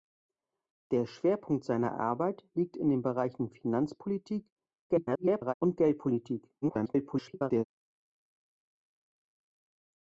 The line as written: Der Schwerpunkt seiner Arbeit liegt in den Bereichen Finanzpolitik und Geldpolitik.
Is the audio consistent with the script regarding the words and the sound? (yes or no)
no